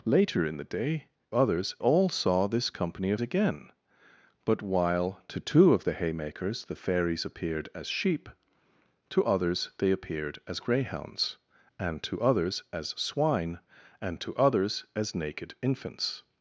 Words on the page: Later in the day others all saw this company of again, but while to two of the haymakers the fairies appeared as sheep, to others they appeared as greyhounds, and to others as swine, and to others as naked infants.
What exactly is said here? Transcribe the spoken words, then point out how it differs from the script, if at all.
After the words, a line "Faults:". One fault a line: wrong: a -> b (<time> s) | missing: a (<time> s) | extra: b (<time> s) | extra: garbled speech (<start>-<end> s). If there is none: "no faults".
Later in the day others all saw this company of again, but while to two of the haymakers the fairies appeared as sheep, to others they appeared as greyhounds, and to others as swine, and to others as naked infants.
Faults:
no faults